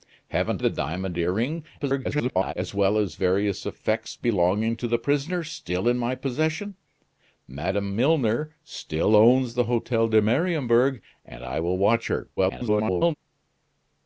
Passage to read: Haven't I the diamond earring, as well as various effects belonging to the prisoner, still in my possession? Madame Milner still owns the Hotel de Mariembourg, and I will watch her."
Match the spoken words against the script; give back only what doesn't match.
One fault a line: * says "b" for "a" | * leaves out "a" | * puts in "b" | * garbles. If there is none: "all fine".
* leaves out "I"
* garbles
* garbles